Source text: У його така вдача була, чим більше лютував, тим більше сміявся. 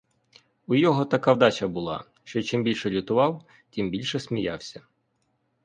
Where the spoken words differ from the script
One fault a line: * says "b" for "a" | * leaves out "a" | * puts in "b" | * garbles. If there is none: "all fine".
* puts in "що"